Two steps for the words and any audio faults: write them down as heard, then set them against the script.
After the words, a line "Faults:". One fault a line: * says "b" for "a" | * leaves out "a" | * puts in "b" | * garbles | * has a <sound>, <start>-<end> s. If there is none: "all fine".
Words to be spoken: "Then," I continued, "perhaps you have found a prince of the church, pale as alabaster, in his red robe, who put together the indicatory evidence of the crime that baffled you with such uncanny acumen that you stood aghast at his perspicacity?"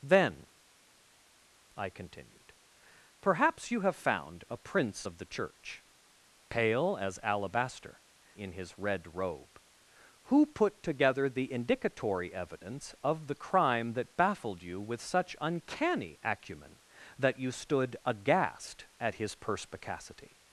"Then," I continued, "perhaps you have found a prince of the church, pale as alabaster, in his red robe, who put together the indicatory evidence of the crime that baffled you with such uncanny acumen that you stood aghast at his perspicacity?"
Faults:
all fine